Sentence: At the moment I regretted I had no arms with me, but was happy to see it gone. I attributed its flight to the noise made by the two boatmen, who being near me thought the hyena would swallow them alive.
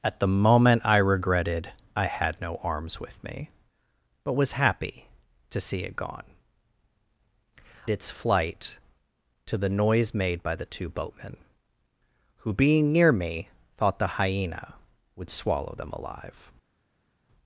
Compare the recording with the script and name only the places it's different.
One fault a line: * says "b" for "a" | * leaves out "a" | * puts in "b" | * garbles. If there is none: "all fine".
* leaves out "I attributed"